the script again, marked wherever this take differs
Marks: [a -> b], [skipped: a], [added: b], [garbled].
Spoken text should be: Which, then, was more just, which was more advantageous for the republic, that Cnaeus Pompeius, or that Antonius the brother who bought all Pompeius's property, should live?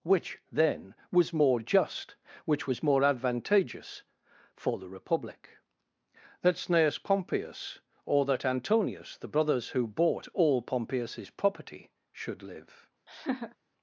Which, then, was more just, which was more advantageous for the republic, that Cnaeus Pompeius, or that Antonius the [brother -> brothers] who bought all Pompeius's property, should live?